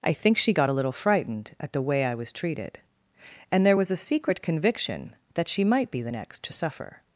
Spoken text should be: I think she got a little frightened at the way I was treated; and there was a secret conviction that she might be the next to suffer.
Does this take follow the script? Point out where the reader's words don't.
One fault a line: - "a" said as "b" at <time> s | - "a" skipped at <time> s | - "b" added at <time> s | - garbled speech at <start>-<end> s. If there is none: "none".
none